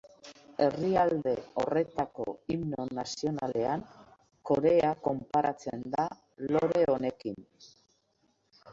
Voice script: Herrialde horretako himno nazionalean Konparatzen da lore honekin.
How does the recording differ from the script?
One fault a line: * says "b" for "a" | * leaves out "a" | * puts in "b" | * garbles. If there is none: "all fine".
* puts in "Korea"